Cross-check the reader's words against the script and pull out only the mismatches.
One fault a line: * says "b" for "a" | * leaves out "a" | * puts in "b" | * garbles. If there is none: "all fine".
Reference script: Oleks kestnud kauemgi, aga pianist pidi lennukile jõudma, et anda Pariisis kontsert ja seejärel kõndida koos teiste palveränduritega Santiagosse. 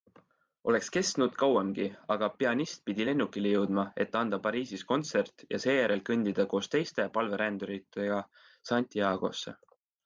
all fine